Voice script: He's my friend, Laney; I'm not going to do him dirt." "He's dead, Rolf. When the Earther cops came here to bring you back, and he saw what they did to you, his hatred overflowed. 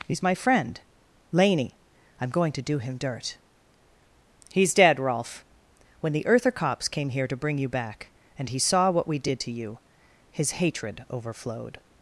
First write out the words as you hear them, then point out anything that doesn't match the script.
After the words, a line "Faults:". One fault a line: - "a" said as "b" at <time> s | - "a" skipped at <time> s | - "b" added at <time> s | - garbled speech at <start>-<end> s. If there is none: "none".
He's my friend, Laney; I'm going to do him dirt." "He's dead, Rolf. When the Earther cops came here to bring you back, and he saw what we did to you, his hatred overflowed.
Faults:
- "not" skipped at 2.3 s
- "they" said as "we" at 9.1 s